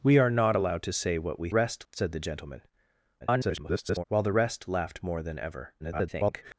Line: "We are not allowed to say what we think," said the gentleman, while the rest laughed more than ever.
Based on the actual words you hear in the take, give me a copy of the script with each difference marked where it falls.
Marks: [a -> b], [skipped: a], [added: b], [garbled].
"We are not allowed to say what we [think," -> rest] said the gentleman, [garbled] while the rest laughed more than ever. [garbled]